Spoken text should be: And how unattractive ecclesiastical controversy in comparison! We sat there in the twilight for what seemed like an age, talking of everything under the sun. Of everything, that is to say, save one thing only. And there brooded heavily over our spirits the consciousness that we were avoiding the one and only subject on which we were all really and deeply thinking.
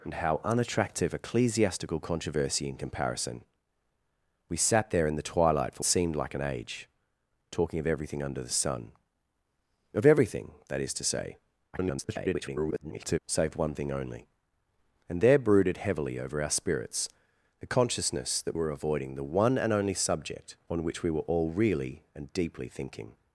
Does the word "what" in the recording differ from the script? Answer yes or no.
yes